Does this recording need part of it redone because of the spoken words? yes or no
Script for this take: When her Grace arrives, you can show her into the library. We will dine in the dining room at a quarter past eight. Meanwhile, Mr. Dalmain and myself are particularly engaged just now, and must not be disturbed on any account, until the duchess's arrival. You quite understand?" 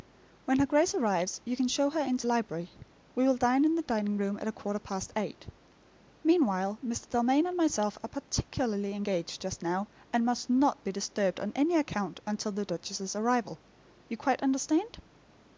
yes